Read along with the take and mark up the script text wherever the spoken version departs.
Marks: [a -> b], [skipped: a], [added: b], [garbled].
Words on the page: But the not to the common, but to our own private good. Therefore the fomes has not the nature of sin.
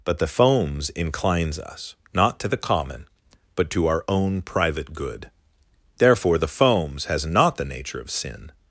But the [added: fomes inclines us] not to the common, but to our own private good. Therefore the fomes has not the nature of sin.